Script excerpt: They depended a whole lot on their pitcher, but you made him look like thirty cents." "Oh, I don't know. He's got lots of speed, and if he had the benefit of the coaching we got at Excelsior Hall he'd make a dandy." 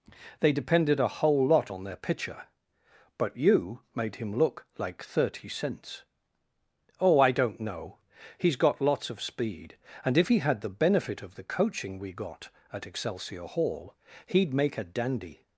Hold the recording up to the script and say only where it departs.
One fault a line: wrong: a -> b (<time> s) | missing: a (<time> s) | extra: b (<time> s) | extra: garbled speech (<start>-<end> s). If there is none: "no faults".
no faults